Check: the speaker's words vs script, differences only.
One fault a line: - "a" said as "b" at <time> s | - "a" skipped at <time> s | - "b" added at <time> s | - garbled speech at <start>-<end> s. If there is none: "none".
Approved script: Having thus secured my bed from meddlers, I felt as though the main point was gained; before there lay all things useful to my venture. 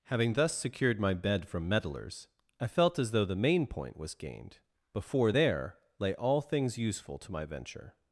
none